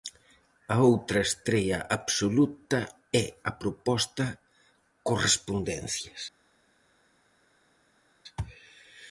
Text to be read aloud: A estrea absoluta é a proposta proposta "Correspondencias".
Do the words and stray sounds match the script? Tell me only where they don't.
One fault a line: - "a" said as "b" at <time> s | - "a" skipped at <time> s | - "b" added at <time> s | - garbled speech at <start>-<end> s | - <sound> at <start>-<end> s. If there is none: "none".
- "outra" added at 0.9 s
- "proposta" skipped at 4.2 s